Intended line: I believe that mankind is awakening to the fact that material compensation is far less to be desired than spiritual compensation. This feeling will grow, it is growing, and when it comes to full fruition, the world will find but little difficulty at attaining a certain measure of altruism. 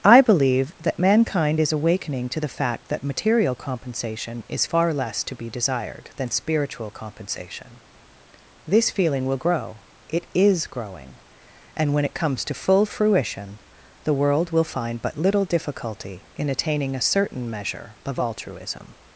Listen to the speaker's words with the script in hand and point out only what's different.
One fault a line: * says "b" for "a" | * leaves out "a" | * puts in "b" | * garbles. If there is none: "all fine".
* says "in" for "at"